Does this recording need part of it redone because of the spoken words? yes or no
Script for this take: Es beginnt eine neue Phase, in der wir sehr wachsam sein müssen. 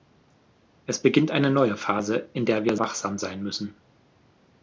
yes